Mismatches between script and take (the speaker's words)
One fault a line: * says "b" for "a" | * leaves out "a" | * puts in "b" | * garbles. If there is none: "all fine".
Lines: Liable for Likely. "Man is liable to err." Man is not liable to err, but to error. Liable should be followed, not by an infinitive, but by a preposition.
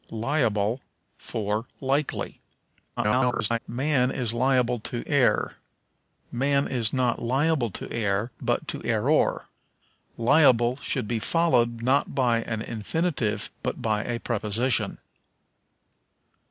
* garbles